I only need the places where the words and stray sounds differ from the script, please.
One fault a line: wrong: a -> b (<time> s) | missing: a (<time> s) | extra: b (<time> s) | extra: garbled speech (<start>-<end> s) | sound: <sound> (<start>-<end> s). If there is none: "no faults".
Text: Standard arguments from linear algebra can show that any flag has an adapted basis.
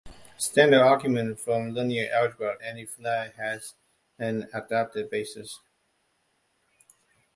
missing: can show that (2.6 s)